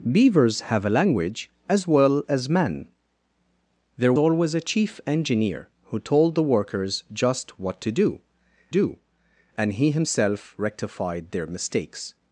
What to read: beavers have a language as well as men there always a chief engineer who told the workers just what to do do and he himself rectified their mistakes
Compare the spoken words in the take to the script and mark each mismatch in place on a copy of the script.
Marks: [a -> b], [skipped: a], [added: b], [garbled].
beavers have a language as well as men there always a chief engineer who told the workers just what to do do and he himself rectified their mistakes